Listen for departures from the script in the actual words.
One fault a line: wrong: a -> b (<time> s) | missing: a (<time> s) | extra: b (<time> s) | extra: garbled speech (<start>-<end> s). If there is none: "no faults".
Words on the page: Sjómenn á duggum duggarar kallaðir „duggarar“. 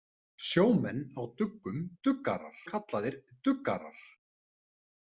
no faults